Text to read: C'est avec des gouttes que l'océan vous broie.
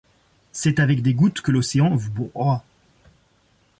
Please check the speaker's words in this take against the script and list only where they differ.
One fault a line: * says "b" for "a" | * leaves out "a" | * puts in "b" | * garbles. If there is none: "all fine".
all fine